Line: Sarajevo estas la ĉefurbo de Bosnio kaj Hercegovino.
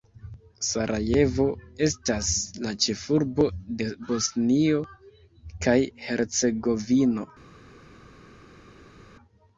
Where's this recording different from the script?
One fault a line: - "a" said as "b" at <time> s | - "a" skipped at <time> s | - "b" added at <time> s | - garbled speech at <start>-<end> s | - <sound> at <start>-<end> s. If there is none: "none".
none